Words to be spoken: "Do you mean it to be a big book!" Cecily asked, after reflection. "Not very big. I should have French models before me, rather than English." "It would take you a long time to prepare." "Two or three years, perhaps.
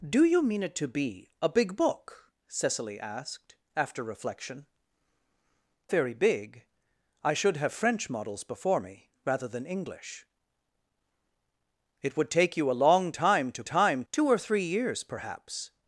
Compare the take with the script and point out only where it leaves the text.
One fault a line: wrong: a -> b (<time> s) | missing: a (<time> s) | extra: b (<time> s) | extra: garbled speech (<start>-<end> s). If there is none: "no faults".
missing: Not (4.7 s)
wrong: prepare -> time (13.6 s)